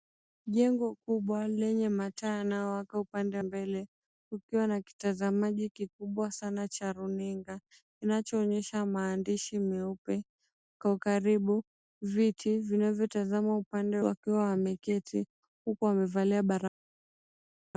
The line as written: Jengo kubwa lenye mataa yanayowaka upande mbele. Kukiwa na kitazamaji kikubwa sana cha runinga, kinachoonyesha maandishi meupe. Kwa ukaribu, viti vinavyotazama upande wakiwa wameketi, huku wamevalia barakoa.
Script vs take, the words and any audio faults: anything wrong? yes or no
no